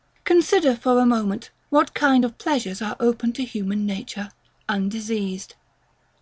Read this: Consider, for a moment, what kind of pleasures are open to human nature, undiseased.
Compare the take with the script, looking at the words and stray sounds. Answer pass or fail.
pass